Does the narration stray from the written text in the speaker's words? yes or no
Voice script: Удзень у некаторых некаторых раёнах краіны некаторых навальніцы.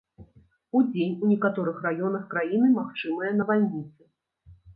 yes